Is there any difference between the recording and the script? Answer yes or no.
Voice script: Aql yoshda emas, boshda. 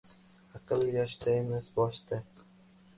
no